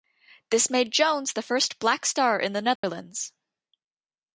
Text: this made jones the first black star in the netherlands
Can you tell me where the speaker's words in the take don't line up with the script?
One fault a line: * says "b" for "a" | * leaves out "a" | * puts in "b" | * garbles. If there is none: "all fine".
all fine